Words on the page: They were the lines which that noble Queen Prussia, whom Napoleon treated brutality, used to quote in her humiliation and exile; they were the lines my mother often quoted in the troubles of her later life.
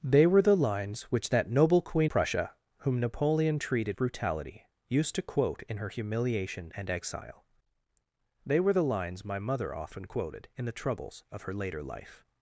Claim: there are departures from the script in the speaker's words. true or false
false